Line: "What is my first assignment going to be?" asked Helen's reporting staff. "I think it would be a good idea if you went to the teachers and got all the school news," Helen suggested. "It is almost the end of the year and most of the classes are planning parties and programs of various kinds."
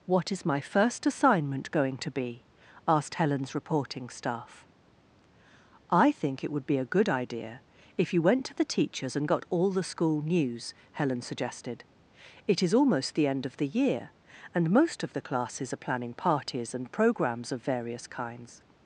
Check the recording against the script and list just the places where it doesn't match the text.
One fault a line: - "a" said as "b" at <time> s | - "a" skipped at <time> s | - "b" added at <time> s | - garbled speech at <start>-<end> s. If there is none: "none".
none